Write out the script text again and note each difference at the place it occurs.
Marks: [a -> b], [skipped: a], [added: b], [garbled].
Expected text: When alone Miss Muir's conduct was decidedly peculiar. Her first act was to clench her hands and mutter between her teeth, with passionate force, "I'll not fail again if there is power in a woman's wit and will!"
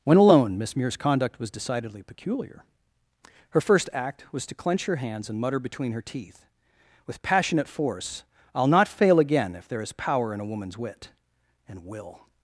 When alone Miss Muir's conduct was decidedly peculiar. Her first act was to clench her hands and mutter between her teeth, with passionate force, "I'll not fail again if there is power in a woman's wit and will!"